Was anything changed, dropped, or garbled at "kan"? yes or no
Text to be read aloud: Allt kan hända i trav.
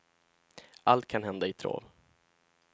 no